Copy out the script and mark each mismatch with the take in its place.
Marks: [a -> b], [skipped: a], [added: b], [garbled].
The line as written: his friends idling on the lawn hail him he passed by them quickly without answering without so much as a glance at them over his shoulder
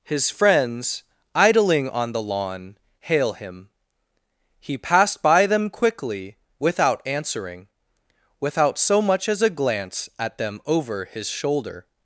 his friends idling on the lawn hail him he passed by them quickly without answering without so much as a glance at them over his shoulder